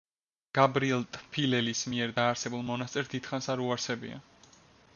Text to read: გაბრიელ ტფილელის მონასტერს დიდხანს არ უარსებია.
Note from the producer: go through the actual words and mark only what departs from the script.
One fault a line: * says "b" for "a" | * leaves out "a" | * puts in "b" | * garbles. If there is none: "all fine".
* puts in "მიერ დაარსებულ"